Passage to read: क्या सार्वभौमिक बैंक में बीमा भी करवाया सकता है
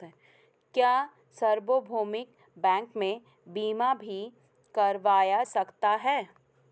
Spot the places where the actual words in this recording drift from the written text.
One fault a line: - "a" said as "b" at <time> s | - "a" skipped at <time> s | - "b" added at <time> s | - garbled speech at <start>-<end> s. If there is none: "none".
none